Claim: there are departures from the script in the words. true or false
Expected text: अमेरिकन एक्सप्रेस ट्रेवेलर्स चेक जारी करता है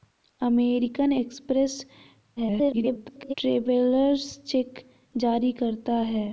true